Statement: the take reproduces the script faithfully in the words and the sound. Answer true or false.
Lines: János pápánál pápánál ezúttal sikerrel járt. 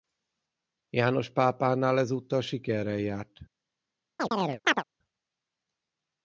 false